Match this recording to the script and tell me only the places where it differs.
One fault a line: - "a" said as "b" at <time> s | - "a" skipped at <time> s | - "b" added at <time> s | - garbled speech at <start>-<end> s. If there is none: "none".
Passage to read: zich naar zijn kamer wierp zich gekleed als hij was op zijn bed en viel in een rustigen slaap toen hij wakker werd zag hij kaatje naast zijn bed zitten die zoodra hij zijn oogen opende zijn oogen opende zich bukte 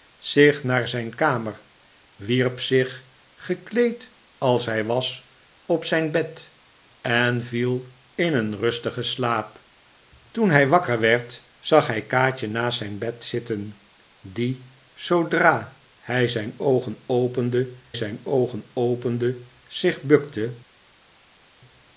none